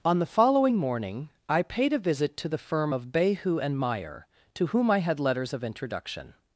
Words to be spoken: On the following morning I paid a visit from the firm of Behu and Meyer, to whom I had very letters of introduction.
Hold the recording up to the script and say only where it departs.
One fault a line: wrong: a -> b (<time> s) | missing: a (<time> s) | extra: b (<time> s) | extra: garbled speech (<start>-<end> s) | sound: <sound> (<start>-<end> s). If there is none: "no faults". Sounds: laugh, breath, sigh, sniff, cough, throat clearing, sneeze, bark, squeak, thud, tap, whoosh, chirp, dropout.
wrong: from -> to (2.4 s)
missing: very (5.2 s)